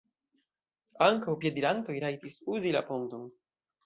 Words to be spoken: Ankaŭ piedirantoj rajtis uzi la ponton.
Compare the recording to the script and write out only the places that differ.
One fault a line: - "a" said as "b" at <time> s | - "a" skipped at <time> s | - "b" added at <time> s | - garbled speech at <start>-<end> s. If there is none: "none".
none